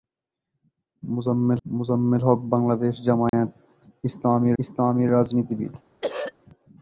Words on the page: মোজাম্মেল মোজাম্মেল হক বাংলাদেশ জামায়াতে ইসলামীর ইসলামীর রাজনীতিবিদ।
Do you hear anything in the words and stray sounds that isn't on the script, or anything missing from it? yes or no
yes